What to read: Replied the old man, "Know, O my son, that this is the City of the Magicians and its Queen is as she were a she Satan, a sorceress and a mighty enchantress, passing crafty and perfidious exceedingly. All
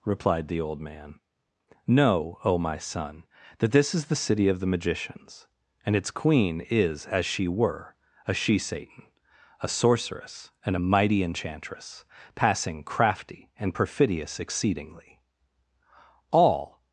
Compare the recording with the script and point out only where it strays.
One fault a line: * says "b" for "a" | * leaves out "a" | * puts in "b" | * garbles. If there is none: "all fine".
all fine